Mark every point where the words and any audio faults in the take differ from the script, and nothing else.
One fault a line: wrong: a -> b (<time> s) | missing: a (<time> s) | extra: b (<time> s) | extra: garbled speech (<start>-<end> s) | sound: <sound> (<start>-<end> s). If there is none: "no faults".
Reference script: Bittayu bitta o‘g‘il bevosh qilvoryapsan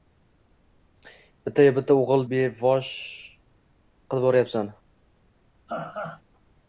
sound: laugh (5.7-6.2 s)